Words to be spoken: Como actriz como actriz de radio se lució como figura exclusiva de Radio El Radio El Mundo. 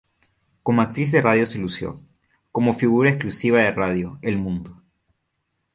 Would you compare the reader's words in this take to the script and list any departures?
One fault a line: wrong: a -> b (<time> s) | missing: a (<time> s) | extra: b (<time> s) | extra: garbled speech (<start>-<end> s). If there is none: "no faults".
missing: como actriz (1.1 s)
missing: Radio El (4.4 s)